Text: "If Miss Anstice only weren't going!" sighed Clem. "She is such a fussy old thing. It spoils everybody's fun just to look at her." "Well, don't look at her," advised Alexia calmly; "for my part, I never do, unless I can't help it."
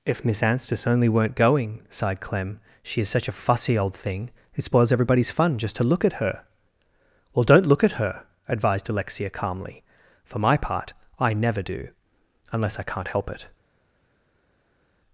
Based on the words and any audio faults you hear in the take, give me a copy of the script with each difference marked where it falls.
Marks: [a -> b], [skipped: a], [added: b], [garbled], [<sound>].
"If Miss Anstice only weren't going!" sighed Clem. "She is such a fussy old thing. It spoils everybody's fun just to look at her." "Well, don't look at her," advised Alexia calmly; "for my part, I never do, unless I can't help it."